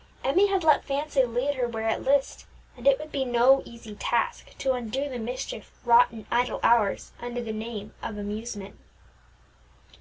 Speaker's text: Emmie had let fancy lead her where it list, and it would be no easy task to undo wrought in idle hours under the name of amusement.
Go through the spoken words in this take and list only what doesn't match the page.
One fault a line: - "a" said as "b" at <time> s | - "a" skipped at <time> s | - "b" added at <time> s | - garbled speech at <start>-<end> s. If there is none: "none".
- "the mischief" added at 5.1 s